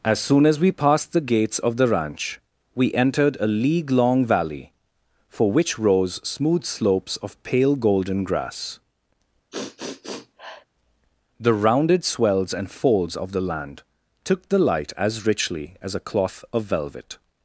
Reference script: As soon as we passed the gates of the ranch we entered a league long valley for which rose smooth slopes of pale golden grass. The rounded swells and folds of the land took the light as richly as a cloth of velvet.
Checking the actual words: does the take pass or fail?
pass